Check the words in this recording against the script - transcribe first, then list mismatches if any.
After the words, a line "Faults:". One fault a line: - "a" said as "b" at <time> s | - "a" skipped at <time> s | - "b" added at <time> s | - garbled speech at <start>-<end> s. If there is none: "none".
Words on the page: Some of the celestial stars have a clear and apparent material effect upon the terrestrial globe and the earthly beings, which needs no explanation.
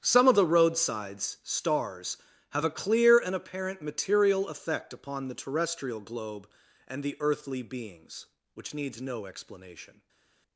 Some of the roadsides stars have a clear and apparent material effect upon the terrestrial globe and the earthly beings, which needs no explanation.
Faults:
- "celestial" said as "roadsides" at 0.5 s